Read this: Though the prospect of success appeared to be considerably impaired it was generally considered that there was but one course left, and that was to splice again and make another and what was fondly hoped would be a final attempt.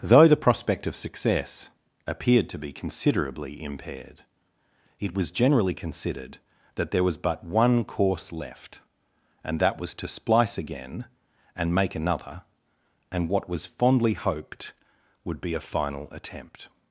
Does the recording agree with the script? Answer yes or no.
yes